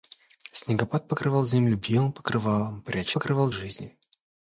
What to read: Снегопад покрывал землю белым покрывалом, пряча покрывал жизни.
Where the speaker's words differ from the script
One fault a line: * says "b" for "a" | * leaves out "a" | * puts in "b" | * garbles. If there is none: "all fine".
all fine